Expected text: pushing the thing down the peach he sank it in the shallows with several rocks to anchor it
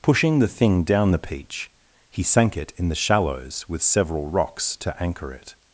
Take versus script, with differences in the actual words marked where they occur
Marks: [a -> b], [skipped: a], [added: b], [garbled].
pushing the thing down the peach he sank it in the shallows with several rocks to anchor it